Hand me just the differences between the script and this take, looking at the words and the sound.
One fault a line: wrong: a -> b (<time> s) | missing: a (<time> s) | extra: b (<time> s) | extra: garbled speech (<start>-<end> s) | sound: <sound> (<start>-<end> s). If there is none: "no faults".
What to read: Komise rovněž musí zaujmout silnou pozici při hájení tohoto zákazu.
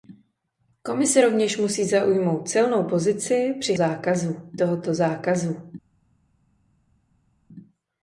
wrong: hájení -> zákazu (3.7 s)